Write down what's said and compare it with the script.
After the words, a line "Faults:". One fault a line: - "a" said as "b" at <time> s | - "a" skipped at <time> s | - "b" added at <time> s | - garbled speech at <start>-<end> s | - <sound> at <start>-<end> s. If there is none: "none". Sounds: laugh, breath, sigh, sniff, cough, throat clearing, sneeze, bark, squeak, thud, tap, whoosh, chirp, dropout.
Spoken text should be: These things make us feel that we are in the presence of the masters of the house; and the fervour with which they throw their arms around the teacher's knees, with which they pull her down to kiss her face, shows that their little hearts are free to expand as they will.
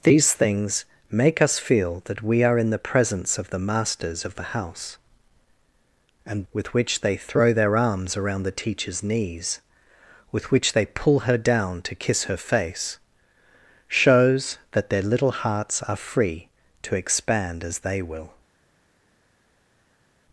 These things make us feel that we are in the presence of the masters of the house; and with which they throw their arms around the teacher's knees, with which they pull her down to kiss her face, shows that their little hearts are free to expand as they will.
Faults:
- "the fervour" skipped at 6.5 s